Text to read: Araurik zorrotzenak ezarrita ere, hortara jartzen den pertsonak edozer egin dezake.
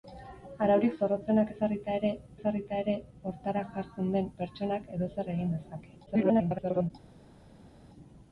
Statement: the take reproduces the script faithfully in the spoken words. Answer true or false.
false